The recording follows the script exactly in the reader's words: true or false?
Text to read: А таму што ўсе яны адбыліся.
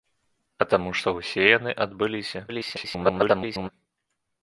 false